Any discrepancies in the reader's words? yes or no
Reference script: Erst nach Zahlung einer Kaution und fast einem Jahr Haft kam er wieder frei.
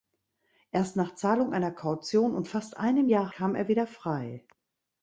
yes